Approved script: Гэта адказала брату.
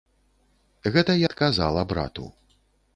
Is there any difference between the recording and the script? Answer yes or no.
no